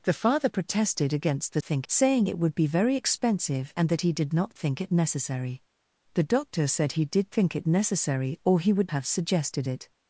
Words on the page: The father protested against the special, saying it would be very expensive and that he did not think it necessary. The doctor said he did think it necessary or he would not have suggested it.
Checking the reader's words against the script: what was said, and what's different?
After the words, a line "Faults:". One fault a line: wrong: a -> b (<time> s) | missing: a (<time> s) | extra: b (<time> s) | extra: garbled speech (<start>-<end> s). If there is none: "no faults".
The father protested against the think, saying it would be very expensive and that he did not think it necessary. The doctor said he did think it necessary or he would have suggested it.
Faults:
wrong: special -> think (1.6 s)
missing: not (8.9 s)